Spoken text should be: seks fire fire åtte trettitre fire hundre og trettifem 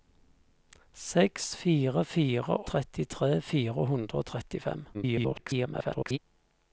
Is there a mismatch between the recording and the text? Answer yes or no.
yes